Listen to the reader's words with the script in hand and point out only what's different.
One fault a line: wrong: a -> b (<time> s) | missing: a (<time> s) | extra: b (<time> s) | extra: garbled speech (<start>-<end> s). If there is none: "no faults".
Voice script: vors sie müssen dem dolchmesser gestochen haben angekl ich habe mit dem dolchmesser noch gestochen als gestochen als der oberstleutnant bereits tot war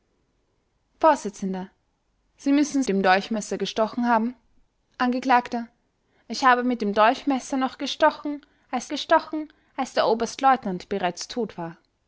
no faults